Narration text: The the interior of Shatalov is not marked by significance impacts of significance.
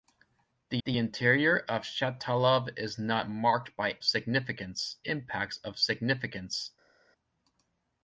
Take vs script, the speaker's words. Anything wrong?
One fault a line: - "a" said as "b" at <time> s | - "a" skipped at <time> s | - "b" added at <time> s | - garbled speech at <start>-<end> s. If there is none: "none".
none